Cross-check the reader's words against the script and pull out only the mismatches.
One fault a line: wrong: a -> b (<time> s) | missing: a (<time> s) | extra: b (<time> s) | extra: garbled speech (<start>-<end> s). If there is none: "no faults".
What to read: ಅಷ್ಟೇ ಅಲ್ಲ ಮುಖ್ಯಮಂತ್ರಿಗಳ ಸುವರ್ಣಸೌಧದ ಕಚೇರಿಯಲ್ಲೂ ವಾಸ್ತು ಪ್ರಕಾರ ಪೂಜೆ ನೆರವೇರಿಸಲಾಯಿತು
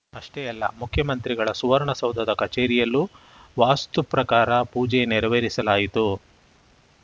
no faults